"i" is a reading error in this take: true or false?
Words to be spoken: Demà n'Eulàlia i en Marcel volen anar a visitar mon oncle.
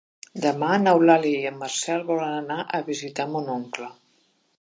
false